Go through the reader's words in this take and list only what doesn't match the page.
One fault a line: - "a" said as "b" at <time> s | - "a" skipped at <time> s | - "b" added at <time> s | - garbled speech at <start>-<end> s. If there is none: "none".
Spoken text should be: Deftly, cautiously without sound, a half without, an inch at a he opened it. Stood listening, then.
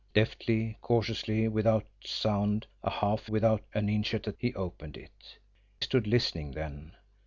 none